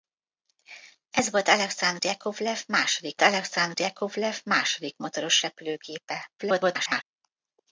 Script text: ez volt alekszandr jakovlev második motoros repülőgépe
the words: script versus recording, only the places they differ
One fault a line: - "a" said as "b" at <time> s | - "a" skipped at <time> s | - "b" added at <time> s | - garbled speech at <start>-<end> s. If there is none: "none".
- "alekszandr jakovlev második" added at 3.2 s
- garbled speech at 6.4-7.0 s